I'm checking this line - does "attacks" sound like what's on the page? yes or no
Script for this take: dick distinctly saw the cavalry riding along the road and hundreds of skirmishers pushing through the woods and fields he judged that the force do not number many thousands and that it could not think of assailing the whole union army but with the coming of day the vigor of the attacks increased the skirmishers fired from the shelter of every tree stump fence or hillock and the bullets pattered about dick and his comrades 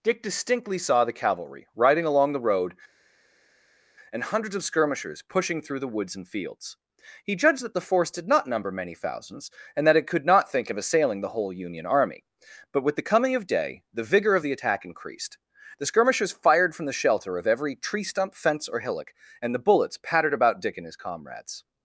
no